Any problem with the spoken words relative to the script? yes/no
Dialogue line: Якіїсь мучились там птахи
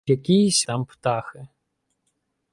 yes